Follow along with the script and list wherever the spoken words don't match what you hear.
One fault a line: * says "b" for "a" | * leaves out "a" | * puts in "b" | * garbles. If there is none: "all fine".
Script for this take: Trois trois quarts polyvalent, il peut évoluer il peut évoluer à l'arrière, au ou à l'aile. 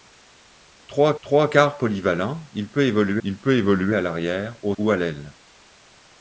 all fine